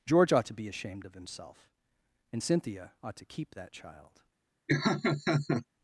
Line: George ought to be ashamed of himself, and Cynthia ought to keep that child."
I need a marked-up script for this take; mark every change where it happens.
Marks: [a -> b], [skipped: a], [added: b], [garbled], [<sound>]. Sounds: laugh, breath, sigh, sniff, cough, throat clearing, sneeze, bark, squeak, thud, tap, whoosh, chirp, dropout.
George ought to be ashamed of himself, and Cynthia ought to keep that child." [laugh]